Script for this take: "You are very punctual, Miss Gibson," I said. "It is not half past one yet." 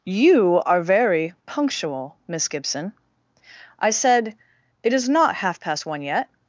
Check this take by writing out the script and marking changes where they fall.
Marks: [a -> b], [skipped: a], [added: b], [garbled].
"You are very punctual, Miss Gibson," I said. "It is not half past one yet."